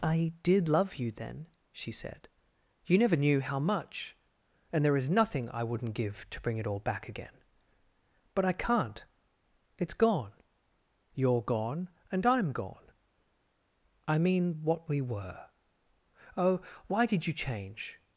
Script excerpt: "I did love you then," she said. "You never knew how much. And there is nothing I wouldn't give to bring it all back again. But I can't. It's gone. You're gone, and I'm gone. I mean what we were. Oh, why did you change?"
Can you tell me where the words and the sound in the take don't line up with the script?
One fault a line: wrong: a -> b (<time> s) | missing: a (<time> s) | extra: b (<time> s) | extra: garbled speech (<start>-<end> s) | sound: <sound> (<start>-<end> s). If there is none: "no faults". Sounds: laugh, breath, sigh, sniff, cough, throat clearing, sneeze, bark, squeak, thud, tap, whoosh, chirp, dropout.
no faults